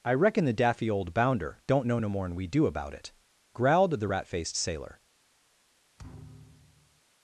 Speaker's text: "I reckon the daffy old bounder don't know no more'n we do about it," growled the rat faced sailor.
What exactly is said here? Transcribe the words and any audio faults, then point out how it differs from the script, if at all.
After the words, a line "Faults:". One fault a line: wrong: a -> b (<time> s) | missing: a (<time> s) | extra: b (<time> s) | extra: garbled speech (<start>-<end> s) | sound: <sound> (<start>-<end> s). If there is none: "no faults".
"I reckon the daffy old bounder don't know no more'n we do about it," growled the rat faced sailor.
Faults:
sound: thud (6.0-7.0 s)